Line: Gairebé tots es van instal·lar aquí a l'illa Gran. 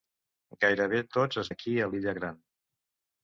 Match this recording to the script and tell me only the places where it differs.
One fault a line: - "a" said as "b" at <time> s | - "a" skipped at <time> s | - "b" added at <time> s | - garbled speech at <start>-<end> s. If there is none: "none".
- "van instal·lar" skipped at 1.5 s